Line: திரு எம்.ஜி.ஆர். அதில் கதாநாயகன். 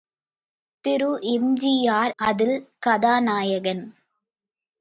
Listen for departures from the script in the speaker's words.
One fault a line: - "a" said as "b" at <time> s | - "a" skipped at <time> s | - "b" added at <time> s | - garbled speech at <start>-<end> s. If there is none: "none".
none